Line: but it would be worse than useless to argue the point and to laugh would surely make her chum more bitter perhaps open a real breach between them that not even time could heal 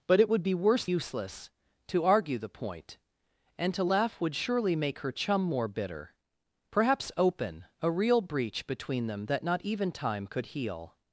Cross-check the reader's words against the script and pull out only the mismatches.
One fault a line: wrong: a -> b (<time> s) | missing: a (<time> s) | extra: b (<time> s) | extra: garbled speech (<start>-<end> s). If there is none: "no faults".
missing: than (0.8 s)